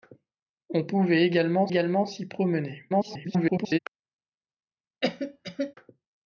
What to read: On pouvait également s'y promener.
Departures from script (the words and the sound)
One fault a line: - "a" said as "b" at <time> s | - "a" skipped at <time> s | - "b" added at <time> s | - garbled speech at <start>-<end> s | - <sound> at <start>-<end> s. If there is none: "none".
- "également" added at 1.7 s
- garbled speech at 2.9-3.8 s
- cough at 5.0-5.7 s